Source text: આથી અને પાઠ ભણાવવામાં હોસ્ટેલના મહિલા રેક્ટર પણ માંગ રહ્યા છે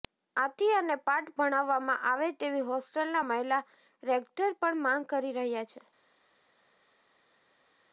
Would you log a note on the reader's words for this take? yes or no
yes